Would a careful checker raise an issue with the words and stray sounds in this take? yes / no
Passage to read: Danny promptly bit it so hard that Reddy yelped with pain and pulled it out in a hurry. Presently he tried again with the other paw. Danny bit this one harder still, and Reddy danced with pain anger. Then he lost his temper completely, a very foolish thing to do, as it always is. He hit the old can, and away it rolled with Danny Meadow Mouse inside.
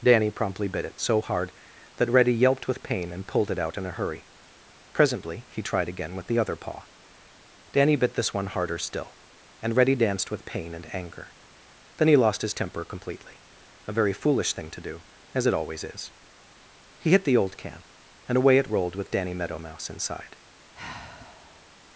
yes